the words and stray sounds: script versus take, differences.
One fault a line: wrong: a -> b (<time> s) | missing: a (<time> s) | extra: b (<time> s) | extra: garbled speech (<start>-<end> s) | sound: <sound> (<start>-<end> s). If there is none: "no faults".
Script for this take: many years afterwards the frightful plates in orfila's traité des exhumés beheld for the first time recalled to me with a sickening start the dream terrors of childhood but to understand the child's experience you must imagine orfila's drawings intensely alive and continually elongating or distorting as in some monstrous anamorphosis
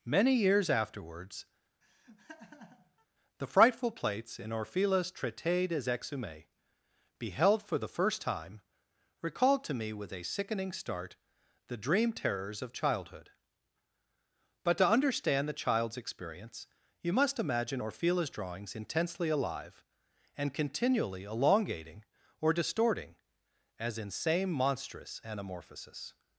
sound: laugh (1.8-3.1 s)
wrong: some -> same (24.1 s)